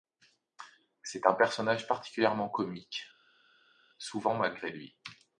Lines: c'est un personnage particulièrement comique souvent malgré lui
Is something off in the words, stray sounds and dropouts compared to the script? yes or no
no